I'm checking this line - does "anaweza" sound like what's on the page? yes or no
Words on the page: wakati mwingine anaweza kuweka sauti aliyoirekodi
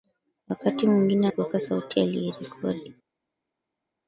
no